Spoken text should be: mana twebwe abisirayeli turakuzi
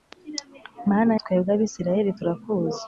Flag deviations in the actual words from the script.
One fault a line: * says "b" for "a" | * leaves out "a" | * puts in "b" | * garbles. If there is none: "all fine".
all fine